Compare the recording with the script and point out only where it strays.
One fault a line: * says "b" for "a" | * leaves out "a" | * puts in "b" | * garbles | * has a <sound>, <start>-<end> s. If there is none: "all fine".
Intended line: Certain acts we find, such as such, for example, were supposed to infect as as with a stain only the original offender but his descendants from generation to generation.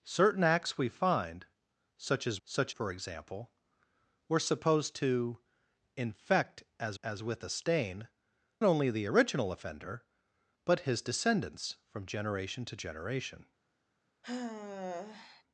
* has a sigh, 14.2-15.4 s